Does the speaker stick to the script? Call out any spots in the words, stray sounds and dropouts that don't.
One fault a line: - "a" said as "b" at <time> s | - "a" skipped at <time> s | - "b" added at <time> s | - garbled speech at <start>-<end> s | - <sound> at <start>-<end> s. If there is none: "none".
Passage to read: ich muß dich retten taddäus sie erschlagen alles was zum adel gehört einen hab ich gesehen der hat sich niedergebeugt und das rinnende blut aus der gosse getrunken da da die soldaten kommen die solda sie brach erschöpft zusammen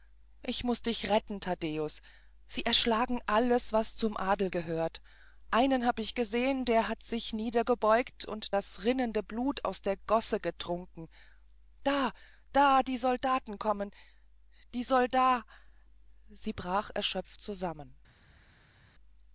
none